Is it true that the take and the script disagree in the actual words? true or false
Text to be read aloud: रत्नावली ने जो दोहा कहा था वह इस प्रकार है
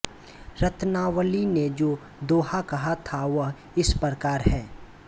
false